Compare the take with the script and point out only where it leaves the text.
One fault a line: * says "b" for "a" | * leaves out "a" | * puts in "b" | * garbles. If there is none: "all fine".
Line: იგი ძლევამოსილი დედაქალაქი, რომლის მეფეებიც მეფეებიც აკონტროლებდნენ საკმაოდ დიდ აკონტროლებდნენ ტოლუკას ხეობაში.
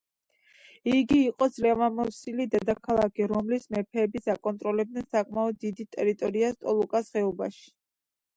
* puts in "იყო"
* leaves out "მეფეებიც"
* says "ტერიტორიას" for "აკონტროლებდნენ"